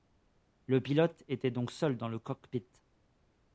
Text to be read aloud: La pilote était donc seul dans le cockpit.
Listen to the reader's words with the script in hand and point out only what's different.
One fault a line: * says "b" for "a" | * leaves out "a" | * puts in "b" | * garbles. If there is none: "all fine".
* says "Le" for "La"